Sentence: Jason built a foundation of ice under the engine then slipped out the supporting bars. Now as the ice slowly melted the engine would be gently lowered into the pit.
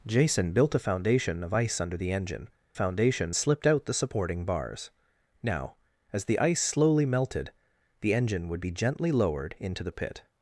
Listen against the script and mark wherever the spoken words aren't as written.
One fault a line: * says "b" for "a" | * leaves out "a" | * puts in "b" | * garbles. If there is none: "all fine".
* says "foundation" for "then"